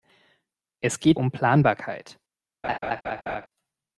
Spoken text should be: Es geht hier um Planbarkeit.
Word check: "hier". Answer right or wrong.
wrong